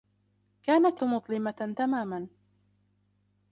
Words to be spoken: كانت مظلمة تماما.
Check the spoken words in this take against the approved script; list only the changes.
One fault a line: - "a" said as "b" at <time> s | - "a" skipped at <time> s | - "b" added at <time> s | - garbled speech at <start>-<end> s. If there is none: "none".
none